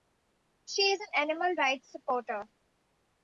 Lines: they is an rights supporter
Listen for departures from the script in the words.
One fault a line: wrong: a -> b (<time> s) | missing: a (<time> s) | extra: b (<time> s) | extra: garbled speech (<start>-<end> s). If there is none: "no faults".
wrong: they -> she (0.7 s)
extra: animal (1.1 s)